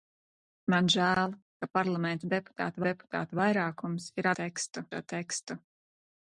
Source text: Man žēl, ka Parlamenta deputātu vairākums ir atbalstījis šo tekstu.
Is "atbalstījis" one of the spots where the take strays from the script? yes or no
yes